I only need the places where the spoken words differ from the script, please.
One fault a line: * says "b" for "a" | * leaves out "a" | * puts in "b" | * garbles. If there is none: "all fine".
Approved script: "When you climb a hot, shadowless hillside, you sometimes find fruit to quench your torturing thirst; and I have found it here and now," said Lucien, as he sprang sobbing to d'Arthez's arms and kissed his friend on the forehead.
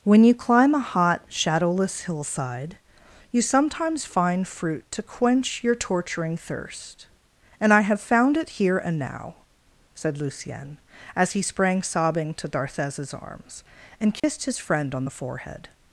all fine